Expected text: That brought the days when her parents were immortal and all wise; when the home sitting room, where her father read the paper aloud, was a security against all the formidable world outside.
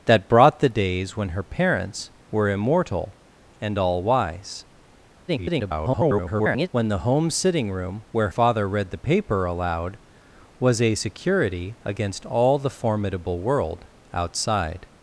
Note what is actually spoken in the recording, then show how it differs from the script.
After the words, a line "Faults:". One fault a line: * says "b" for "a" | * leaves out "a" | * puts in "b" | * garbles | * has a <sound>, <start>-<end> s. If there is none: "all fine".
That brought the days when her parents were immortal and all wise; [garbled] when the home sitting room, where father read the paper aloud, was a security against all the formidable world outside.
Faults:
* garbles
* leaves out "her"